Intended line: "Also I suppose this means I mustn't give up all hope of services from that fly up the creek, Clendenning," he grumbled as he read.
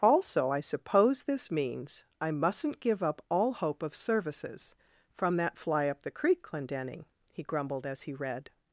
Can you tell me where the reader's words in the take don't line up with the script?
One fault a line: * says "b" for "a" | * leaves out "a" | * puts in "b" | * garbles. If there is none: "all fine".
all fine